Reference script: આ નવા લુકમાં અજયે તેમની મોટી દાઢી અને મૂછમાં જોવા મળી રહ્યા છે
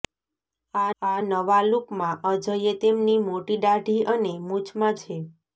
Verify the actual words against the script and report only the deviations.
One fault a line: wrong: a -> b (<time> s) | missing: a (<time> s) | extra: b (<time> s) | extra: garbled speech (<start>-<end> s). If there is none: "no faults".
extra: આ (1.0 s)
missing: જોવા મળી રહ્યા (5.0 s)